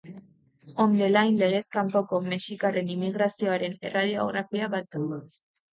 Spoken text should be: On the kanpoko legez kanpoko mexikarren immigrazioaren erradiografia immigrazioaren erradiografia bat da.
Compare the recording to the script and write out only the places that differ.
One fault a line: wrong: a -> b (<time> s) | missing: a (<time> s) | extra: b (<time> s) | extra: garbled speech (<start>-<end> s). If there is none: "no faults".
wrong: kanpoko -> line (1.1 s)
missing: immigrazioaren erradiografia (4.8 s)